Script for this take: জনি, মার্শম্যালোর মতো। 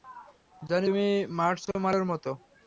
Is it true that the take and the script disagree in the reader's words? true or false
true